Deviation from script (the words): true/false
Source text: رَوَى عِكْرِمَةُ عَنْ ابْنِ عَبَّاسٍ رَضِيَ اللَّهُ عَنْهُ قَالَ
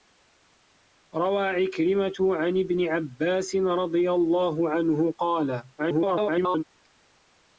true